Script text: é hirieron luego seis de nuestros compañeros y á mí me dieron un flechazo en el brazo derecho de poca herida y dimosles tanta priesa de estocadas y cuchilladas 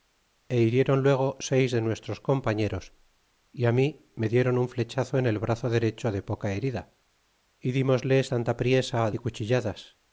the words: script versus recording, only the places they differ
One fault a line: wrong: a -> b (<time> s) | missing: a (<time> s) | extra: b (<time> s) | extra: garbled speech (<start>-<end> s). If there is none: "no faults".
missing: de estocadas (9.1 s)